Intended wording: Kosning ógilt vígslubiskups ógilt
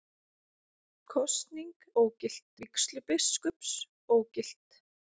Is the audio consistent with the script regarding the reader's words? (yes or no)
yes